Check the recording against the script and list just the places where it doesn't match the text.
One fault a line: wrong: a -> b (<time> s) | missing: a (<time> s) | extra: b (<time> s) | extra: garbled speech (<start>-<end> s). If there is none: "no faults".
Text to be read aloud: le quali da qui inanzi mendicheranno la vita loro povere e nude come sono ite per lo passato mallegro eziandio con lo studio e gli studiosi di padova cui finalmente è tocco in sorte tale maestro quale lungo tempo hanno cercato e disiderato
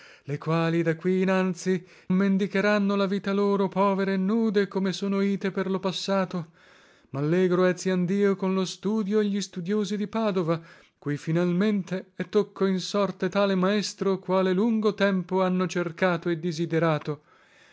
no faults